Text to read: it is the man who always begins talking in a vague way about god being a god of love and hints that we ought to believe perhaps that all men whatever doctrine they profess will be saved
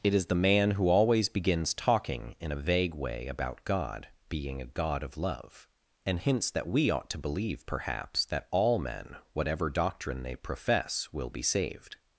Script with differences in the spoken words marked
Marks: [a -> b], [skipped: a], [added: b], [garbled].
it is the man who always begins talking in a vague way about god being a god of love and hints that we ought to believe perhaps that all men whatever doctrine they profess will be saved